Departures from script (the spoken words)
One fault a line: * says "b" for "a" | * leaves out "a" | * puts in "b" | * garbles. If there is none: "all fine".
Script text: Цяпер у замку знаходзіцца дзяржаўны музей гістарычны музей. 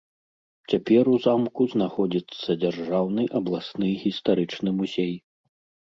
* says "абласны" for "музей"